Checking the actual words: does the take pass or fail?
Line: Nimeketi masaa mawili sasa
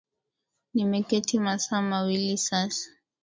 pass